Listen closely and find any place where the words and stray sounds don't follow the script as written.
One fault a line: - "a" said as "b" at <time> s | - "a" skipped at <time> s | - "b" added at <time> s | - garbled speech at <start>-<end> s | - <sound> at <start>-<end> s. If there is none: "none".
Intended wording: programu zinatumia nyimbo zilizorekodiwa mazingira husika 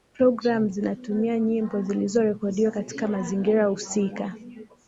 - "katika" added at 2.7 s